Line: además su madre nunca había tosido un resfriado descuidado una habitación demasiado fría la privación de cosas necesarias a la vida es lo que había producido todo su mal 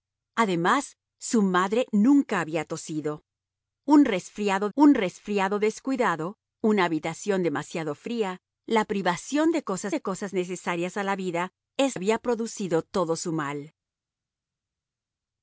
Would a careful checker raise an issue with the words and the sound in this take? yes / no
yes